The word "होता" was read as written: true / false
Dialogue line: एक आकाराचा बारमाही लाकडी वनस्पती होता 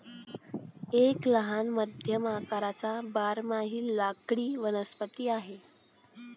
false